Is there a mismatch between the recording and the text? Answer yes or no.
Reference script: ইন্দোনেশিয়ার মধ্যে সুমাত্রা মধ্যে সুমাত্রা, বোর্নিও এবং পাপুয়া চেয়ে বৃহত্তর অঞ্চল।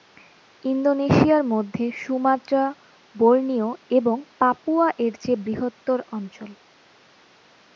yes